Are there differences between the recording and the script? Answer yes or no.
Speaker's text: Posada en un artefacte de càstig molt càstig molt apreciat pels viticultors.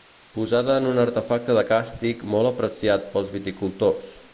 yes